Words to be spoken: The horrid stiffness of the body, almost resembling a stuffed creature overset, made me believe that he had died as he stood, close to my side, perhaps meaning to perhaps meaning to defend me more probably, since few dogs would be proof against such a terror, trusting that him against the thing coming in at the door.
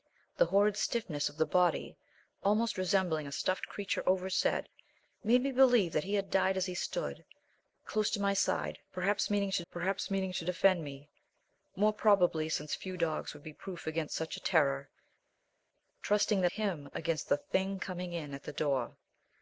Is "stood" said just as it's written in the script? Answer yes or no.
yes